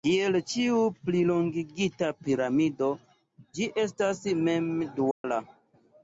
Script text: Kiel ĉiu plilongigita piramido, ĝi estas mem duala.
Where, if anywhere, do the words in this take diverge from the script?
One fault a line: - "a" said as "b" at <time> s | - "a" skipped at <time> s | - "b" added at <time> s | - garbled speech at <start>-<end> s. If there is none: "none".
none